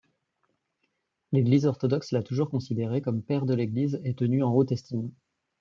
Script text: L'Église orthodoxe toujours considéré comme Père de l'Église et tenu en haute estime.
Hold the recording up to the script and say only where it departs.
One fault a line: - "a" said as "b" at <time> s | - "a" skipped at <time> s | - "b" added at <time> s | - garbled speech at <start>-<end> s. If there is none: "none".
- "l'a" added at 2.1 s